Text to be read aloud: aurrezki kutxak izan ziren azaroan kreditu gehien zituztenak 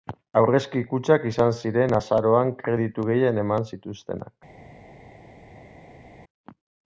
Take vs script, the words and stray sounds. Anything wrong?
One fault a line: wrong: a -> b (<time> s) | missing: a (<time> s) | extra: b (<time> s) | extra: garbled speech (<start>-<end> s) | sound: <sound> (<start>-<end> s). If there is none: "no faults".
extra: eman (3.5 s)